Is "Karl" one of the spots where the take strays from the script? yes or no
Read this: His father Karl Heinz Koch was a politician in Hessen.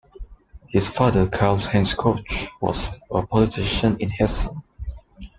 no